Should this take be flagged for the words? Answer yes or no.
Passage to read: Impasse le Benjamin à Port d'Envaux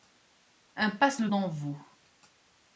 yes